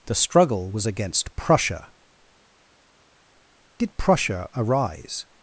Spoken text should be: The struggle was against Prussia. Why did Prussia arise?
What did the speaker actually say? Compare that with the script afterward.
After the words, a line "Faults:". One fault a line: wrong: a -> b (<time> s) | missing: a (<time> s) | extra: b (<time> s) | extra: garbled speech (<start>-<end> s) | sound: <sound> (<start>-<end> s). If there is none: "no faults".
The struggle was against Prussia. Did Prussia arise?
Faults:
missing: Why (1.9 s)